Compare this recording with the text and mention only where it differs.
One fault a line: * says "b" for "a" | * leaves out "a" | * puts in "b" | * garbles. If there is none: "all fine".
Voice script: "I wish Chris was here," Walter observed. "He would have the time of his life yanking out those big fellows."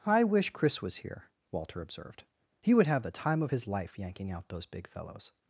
all fine